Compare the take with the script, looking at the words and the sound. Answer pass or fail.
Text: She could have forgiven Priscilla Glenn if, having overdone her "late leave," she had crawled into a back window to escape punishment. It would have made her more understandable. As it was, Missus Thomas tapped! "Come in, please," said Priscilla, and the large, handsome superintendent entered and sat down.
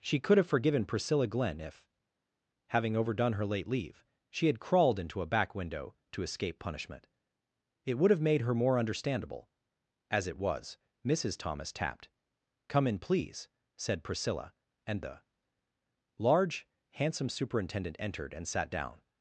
pass